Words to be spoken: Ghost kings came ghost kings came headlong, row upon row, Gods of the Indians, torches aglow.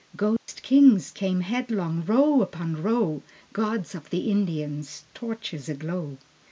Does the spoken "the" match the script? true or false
true